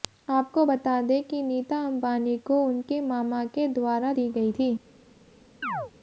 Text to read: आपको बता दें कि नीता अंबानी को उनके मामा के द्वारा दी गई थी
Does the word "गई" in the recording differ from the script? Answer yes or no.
no